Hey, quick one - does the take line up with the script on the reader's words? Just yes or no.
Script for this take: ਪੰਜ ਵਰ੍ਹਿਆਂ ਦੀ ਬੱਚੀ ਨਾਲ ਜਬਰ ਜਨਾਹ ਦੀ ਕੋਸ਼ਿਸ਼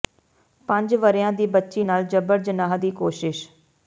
yes